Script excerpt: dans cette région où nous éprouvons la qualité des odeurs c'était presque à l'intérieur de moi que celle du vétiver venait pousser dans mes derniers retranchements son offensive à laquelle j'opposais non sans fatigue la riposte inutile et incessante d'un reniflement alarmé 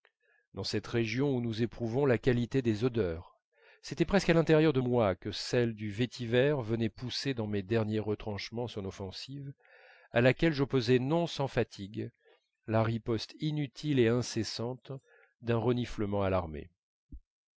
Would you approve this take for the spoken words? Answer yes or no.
yes